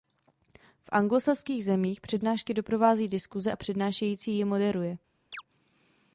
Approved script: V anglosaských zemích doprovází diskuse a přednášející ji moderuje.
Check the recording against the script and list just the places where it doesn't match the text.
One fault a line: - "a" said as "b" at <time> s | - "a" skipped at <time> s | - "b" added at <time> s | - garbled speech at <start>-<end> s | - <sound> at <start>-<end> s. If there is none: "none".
- "přednášky" added at 2.0 s
- chirp at 5.3-5.4 s